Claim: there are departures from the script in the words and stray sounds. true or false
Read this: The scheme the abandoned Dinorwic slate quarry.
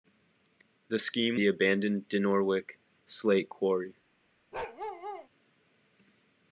true